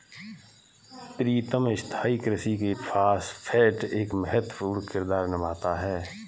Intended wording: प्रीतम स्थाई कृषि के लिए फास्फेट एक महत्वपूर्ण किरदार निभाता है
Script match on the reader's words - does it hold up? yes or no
no